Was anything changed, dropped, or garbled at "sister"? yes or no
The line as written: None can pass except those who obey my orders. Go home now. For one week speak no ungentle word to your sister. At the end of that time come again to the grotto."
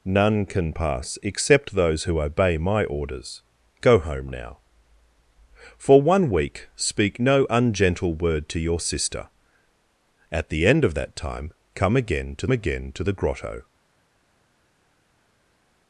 no